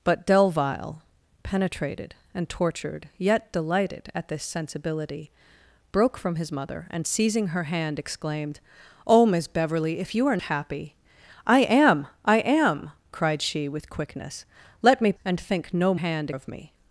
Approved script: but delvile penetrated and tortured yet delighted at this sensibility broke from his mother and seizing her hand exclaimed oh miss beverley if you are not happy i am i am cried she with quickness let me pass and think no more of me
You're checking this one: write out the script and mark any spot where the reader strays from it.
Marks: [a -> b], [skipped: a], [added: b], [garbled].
but delvile penetrated and tortured yet delighted at this sensibility broke from his mother and seizing her hand exclaimed oh miss beverley if you are [skipped: not] happy i am i am cried she with quickness let me [skipped: pass] and think no [more -> hand] of me